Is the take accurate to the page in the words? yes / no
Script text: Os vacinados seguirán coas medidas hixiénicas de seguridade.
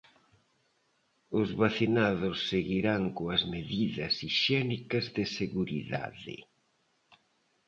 yes